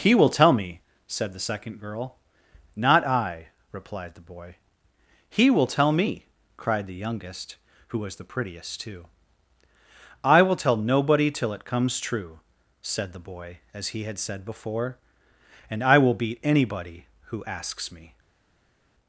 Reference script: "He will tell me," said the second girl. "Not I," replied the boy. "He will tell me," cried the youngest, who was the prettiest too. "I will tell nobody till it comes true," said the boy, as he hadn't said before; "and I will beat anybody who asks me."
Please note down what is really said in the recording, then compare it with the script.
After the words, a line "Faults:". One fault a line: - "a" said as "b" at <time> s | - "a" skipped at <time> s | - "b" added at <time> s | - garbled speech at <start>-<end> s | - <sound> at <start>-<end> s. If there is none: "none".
"He will tell me," said the second girl. "Not I," replied the boy. "He will tell me," cried the youngest, who was the prettiest too. "I will tell nobody till it comes true," said the boy, as he had said before; "and I will beat anybody who asks me."
Faults:
- "hadn't" said as "had" at 14.1 s